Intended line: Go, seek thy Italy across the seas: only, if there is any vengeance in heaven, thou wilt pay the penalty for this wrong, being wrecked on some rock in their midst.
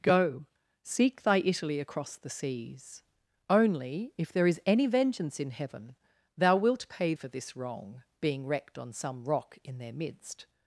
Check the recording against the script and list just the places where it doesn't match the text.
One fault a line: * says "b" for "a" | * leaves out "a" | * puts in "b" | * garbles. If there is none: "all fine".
* leaves out "the penalty"